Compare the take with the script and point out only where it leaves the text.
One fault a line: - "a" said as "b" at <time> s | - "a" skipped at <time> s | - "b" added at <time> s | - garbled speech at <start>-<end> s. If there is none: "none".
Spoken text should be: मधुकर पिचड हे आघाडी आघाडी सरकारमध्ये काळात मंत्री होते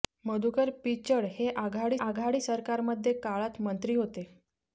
none